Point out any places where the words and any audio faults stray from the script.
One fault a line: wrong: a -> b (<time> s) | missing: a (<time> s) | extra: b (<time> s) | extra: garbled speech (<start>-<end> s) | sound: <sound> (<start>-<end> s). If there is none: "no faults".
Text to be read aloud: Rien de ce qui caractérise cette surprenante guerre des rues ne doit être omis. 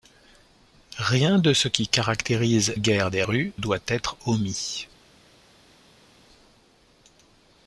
missing: cette surprenante (2.8 s)
missing: ne (3.5 s)